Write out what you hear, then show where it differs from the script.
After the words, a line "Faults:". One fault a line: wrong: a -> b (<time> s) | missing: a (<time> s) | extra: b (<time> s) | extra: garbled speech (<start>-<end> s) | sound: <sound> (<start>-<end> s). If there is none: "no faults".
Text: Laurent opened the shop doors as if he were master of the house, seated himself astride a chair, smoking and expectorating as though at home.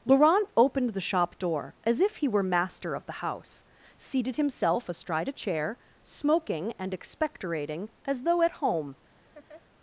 Laurent opened the shop door as if he were master of the house, seated himself astride a chair, smoking and expectorating as though at home.
Faults:
wrong: doors -> door (1.4 s)
sound: laugh (9.3-9.6 s)